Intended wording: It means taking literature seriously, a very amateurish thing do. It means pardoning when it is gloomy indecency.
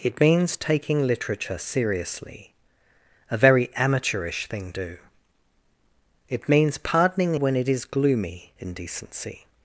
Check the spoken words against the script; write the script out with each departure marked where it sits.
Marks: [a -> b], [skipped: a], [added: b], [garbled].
It means taking literature seriously, a very amateurish thing do. It means pardoning when it is gloomy indecency.